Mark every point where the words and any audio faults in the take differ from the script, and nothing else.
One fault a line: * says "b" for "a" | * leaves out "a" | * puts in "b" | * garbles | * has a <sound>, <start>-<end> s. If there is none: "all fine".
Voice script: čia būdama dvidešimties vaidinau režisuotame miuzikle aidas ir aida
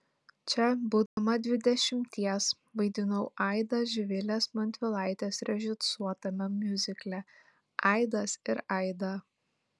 * has a dropout, 1.1-1.2 s
* puts in "aidą živilės montvilaitės"